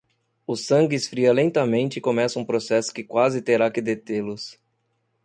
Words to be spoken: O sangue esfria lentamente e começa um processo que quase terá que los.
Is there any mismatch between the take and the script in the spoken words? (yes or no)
yes